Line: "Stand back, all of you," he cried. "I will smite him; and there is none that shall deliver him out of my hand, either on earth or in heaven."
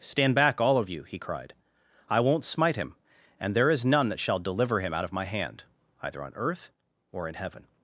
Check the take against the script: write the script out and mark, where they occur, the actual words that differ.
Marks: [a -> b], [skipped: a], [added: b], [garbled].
"Stand back, all of you," he cried. "I [will -> won't] smite him; and there is none that shall deliver him out of my hand, either on earth or in heaven."